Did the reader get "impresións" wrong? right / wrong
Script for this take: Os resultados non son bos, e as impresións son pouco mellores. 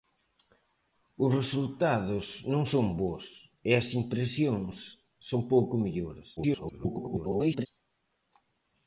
right